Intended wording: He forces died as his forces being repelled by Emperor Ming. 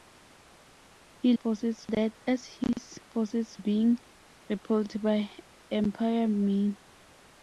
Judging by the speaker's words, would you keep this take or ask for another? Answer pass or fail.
pass